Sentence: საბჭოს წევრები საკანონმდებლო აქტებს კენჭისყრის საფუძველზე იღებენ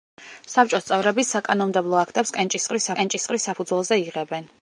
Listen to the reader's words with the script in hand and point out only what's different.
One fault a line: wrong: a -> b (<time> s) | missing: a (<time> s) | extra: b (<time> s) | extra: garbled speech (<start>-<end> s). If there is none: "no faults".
extra: კენჭისყრის (3.0 s)